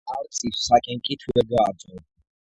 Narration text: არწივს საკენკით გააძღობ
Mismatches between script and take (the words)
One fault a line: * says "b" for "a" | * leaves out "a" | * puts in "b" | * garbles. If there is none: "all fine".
* puts in "ვერ"